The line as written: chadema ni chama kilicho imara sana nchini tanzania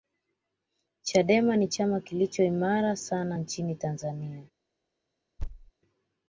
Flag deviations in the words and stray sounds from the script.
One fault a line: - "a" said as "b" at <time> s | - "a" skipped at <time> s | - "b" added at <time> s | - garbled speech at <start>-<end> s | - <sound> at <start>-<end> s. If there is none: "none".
- thud at 5.4-5.7 s